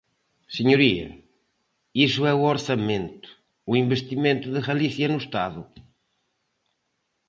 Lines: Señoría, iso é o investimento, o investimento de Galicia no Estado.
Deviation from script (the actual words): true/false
true